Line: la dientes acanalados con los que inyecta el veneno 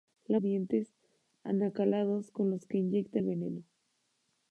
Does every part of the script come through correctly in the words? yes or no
yes